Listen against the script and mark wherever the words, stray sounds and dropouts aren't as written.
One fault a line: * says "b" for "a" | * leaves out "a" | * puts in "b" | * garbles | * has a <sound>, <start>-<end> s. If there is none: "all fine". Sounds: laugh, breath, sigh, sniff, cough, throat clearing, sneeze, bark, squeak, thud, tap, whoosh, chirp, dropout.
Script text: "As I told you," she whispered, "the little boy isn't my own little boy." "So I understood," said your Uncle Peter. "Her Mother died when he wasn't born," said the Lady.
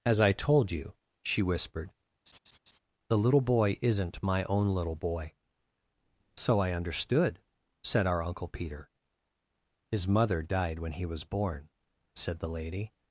* has a laugh, 2.3-2.8 s
* says "our" for "your"
* says "His" for "Her"
* says "was" for "wasn't"